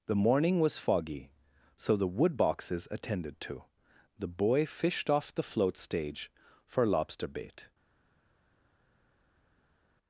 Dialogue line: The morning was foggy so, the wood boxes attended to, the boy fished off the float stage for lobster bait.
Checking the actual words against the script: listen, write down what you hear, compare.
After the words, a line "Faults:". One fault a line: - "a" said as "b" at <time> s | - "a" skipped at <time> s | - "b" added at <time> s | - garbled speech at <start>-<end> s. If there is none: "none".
The morning was foggy so, the wood boxes attended to, the boy fished off the float stage for lobster bait.
Faults:
none